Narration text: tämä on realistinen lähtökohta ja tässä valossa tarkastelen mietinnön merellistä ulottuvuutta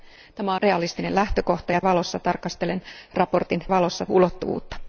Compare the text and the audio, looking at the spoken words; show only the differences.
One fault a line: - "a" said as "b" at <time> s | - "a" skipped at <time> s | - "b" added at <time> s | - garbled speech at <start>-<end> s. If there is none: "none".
- "on" skipped at 0.6 s
- "tässä" skipped at 1.8 s
- "merellistä" said as "valossa" at 3.7 s